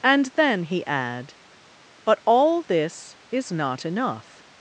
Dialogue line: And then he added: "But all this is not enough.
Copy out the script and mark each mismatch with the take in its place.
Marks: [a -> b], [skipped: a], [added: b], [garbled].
And then he [added: -> add] "But all this is not enough.